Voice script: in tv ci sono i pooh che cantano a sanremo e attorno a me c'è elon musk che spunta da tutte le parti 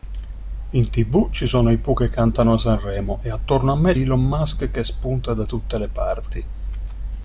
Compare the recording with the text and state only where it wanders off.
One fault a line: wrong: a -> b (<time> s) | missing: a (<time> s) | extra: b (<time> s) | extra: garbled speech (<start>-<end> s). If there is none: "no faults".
missing: c'è (3.9 s)